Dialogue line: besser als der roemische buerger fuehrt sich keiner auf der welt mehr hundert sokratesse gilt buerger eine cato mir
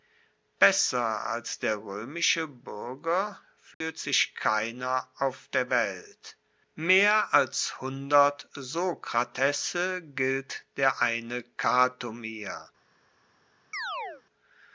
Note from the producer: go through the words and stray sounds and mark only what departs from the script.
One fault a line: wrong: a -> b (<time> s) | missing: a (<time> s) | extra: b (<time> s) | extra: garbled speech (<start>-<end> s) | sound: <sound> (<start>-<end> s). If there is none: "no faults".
sound: dropout (3.7-3.8 s)
extra: als (7.3 s)
wrong: buerger -> der (10.8 s)
sound: chirp (13.7-14.2 s)